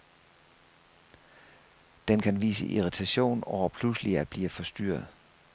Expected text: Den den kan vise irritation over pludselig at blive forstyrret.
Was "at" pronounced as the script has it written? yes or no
yes